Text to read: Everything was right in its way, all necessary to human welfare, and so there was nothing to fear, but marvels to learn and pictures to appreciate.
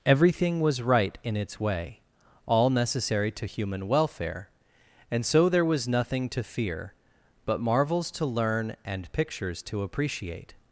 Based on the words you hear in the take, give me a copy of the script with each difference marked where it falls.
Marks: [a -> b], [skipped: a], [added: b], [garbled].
Everything was right in its way, all necessary to human welfare, and so there was nothing to fear, but marvels to learn and pictures to appreciate.